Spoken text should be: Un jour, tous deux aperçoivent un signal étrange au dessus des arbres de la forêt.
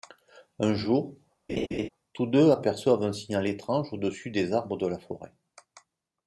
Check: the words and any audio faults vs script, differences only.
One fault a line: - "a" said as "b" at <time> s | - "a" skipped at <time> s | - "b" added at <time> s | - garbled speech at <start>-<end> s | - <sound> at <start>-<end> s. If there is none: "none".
- laugh at 1.5-1.9 s